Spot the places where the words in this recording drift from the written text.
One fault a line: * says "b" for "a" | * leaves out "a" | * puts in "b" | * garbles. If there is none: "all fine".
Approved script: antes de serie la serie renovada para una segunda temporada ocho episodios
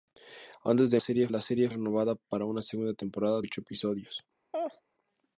all fine